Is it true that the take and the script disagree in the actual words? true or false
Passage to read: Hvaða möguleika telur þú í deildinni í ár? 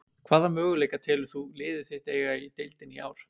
true